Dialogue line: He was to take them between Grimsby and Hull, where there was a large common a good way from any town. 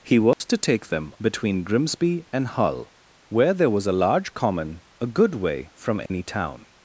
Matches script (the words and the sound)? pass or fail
fail